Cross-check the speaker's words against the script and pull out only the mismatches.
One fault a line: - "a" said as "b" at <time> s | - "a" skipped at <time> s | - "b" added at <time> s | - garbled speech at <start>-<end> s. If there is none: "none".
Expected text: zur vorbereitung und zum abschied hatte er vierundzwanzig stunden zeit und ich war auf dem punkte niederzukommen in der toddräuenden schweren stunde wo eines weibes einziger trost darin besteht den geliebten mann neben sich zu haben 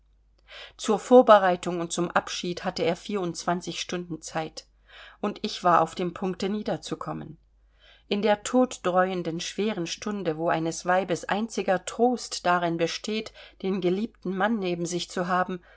none